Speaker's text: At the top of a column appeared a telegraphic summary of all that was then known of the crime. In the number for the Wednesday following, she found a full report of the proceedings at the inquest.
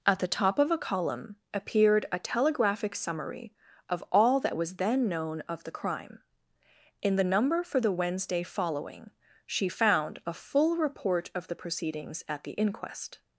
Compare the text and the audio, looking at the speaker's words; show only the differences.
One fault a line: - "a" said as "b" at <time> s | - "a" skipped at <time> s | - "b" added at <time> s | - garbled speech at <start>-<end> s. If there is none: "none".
none